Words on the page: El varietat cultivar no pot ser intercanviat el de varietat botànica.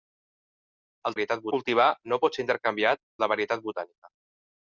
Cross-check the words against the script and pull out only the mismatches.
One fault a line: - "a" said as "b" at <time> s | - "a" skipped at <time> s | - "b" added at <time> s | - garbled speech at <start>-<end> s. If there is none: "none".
none